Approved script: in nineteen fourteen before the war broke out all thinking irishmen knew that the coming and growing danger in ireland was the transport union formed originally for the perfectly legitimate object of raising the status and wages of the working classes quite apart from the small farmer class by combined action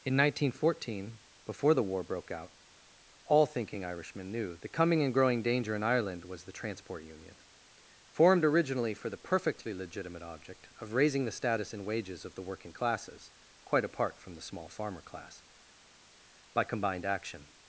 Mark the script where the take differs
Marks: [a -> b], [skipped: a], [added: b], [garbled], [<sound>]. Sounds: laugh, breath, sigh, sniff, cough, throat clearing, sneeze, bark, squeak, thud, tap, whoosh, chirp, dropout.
in nineteen fourteen before the war broke out all thinking irishmen knew [skipped: that] the coming and growing danger in ireland was the transport union formed originally for the perfectly legitimate object of raising the status and wages of the working classes quite apart from the small farmer class by combined action